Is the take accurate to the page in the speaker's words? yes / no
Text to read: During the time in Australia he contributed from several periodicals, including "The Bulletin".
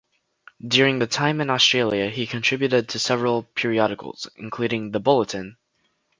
no